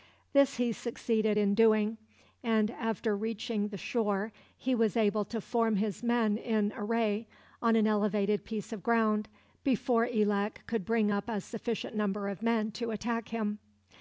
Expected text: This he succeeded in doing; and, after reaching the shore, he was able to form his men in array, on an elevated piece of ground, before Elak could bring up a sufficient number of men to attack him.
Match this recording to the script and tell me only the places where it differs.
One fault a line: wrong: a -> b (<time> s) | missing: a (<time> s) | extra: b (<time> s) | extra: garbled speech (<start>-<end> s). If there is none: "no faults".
no faults